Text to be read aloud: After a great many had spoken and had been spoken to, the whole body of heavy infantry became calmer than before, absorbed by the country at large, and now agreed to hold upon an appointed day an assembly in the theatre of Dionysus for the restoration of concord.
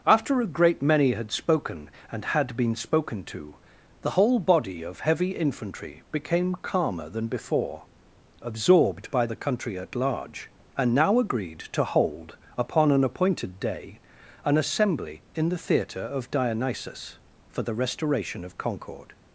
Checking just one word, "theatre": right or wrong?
right